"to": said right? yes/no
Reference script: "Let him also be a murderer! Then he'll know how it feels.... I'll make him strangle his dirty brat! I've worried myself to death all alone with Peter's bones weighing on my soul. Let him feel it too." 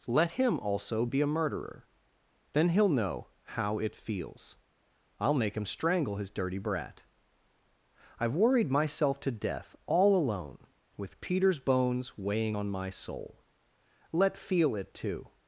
yes